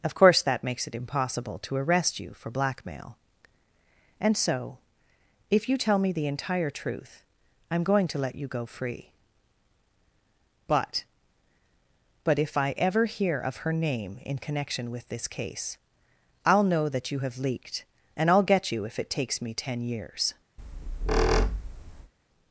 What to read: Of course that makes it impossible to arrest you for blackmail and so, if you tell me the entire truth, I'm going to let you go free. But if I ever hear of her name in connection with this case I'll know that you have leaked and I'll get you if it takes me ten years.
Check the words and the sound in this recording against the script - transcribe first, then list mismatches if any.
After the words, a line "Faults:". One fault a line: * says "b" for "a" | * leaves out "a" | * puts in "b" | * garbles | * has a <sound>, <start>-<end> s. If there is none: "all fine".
Of course that makes it impossible to arrest you for blackmail and so, if you tell me the entire truth, I'm going to let you go free. But But if I ever hear of her name in connection with this case I'll know that you have leaked and I'll get you if it takes me ten years.
Faults:
* puts in "But"
* has a squeak, 20.6-22.1 s